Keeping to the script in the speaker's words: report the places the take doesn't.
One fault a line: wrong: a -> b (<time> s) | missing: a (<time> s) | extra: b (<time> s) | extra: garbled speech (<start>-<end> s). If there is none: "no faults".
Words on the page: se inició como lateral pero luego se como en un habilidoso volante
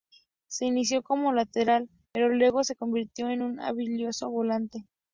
wrong: como -> convirtió (2.8 s)